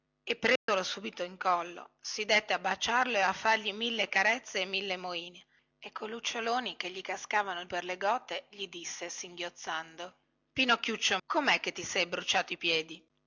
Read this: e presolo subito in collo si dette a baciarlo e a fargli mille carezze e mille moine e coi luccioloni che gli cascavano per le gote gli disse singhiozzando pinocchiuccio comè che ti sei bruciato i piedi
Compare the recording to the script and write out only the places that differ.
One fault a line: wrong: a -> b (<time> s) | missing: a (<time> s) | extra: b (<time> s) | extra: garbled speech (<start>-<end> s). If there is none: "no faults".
no faults